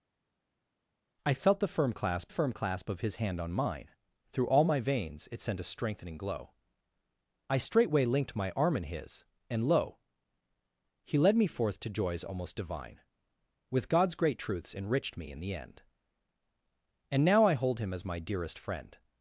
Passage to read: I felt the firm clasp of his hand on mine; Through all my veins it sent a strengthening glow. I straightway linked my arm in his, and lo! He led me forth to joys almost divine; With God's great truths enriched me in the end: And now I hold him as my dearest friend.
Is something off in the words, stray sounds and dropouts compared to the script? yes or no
yes